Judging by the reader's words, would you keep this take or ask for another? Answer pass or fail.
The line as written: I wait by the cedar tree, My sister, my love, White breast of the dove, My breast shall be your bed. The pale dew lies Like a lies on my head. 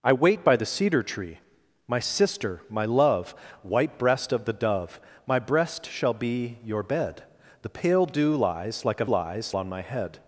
pass